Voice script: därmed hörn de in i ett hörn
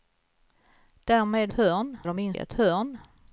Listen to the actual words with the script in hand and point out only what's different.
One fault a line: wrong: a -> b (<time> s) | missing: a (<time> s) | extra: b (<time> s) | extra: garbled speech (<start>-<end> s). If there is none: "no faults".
no faults